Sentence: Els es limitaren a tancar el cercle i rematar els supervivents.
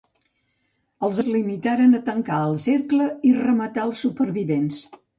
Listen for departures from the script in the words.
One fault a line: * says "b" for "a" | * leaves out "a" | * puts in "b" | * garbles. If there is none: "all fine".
all fine